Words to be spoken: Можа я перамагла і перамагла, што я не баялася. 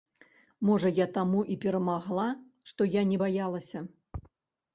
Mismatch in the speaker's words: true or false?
true